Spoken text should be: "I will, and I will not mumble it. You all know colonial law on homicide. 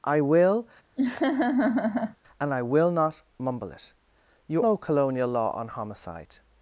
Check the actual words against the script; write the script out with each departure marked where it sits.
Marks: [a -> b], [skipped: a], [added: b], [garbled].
"I will, and I will not mumble it. You [skipped: all] know colonial law on homicide.